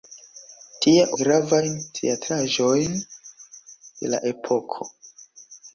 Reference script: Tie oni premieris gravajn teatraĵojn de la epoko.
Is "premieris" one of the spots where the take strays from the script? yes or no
yes